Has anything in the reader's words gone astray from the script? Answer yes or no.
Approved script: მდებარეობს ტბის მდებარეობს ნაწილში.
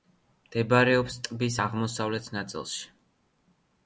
yes